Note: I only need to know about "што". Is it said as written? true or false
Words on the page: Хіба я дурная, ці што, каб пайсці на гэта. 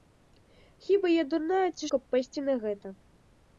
false